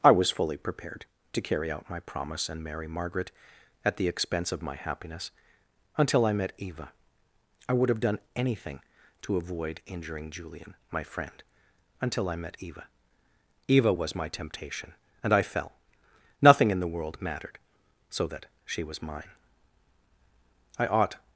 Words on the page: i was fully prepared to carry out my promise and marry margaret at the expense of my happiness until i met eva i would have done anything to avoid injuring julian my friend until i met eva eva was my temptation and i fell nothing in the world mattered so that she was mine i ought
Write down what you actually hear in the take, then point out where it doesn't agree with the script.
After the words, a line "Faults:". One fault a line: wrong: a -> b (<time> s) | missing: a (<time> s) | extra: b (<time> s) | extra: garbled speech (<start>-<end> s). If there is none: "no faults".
i was fully prepared to carry out my promise and marry margaret at the expense of my happiness until i met eva i would have done anything to avoid injuring julian my friend until i met eva eva was my temptation and i fell nothing in the world mattered so that she was mine i ought
Faults:
no faults